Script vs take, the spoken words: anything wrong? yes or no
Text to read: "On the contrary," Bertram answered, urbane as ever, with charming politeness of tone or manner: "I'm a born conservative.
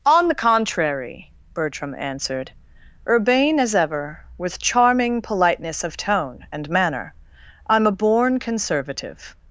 yes